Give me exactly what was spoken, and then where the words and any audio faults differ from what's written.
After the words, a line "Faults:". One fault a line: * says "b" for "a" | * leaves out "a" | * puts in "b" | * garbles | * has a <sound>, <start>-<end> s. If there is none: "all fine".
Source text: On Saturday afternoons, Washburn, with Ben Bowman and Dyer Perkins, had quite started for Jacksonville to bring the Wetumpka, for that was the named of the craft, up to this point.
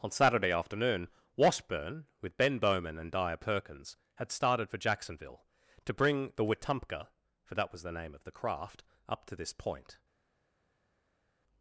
On Saturday afternoon, Washburn, with Ben Bowman and Dyer Perkins, had started for Jacksonville to bring the Wetumpka, for that was the name of the craft, up to this point.
Faults:
* says "afternoon" for "afternoons"
* leaves out "quite"
* says "name" for "named"